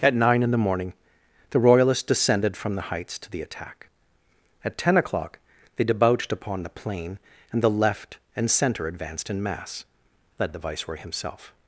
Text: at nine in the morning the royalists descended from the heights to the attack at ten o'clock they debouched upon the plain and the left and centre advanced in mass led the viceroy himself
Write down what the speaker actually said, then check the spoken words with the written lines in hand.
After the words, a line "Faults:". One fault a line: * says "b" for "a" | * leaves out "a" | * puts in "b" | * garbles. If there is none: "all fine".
at nine in the morning the royalists descended from the heights to the attack at ten o'clock they debouched upon the plain and the left and centre advanced in mass led the viceroy himself
Faults:
all fine